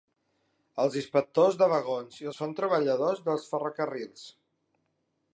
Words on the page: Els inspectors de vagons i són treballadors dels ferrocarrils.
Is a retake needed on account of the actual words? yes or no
no